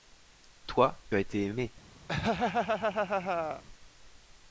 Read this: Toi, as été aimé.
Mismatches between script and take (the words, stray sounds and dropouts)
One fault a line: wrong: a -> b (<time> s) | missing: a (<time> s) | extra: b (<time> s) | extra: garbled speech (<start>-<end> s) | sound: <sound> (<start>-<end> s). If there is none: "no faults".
sound: laugh (2.1-3.6 s)